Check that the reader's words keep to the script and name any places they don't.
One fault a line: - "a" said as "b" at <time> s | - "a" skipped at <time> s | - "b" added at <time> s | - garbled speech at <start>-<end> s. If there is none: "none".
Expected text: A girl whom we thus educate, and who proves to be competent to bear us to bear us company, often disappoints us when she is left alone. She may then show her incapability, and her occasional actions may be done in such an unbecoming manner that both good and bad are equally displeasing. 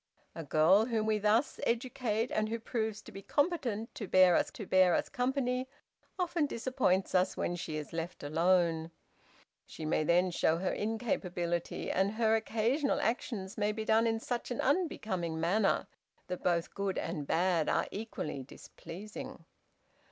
none